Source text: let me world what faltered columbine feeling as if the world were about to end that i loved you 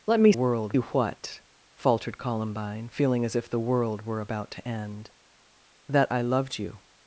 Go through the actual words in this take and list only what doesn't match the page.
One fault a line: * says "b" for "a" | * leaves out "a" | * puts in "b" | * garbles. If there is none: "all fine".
all fine